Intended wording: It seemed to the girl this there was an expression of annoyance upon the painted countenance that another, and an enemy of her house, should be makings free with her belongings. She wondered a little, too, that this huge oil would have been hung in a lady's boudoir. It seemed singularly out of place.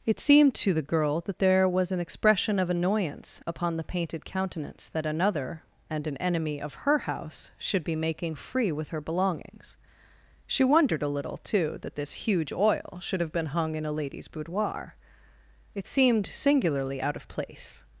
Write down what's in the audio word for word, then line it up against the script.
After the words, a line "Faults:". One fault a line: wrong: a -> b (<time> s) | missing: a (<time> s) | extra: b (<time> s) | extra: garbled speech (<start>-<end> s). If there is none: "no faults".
It seemed to the girl that there was an expression of annoyance upon the painted countenance that another, and an enemy of her house, should be making free with her belongings. She wondered a little, too, that this huge oil should have been hung in a lady's boudoir. It seemed singularly out of place.
Faults:
wrong: this -> that (1.2 s)
wrong: makings -> making (8.0 s)
wrong: would -> should (13.0 s)